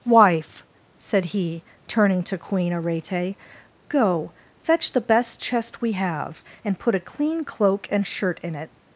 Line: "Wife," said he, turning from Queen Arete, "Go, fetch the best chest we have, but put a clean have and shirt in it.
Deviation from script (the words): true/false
true